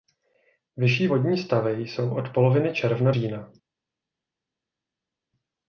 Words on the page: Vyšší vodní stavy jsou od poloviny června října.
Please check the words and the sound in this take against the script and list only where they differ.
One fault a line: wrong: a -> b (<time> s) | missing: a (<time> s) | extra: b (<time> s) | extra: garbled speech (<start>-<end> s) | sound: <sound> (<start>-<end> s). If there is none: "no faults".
no faults